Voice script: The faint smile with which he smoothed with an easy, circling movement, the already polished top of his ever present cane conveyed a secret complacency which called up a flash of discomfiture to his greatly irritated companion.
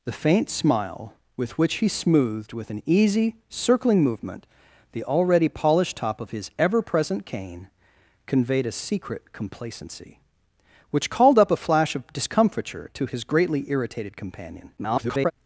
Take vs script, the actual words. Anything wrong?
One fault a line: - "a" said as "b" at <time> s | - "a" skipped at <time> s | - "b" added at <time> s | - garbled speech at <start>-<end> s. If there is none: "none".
- garbled speech at 14.8-15.3 s